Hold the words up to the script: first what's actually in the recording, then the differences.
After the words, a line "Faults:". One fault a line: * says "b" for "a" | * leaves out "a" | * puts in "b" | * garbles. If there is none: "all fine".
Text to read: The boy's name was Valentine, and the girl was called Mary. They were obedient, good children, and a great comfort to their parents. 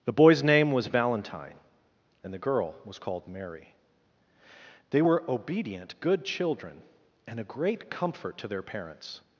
The boy's name was Valentine, and the girl was called Mary. They were obedient, good children, and a great comfort to their parents.
Faults:
all fine